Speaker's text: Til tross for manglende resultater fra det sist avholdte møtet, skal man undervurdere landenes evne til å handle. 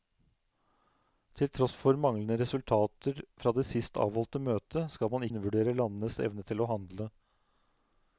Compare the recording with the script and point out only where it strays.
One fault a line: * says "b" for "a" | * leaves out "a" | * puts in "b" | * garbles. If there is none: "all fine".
all fine